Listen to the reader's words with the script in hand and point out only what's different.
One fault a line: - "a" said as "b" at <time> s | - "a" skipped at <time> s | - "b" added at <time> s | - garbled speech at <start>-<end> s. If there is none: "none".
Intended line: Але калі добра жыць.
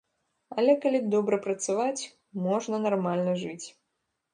- "працаваць можна нармальна" added at 1.5 s